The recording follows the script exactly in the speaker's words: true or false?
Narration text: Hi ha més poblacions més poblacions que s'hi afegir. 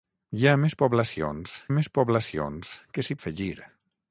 true